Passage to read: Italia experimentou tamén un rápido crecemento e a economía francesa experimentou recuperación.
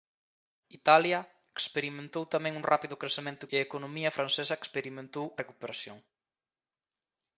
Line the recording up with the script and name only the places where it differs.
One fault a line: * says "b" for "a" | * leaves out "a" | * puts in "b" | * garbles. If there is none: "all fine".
all fine